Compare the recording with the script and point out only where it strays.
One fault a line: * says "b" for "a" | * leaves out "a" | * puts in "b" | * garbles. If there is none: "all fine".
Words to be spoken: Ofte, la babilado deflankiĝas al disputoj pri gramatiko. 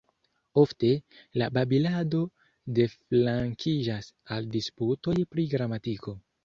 all fine